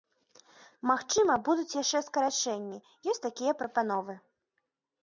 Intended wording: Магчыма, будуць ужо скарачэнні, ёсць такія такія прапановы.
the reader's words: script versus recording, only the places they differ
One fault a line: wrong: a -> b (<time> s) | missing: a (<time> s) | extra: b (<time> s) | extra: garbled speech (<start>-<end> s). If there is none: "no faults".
wrong: ужо -> яшчэ (1.8 s)
missing: такія (3.5 s)